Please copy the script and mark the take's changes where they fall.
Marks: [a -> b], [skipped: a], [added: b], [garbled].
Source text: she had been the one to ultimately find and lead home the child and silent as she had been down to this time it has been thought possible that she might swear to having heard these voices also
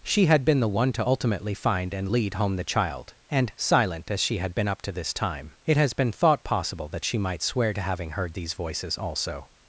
she had been the one to ultimately find and lead home the child and silent as she had been [down -> up] to this time it has been thought possible that she might swear to having heard these voices also